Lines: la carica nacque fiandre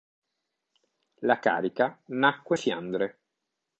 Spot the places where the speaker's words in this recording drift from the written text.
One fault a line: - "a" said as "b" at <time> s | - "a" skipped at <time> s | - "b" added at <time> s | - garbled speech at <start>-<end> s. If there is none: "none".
none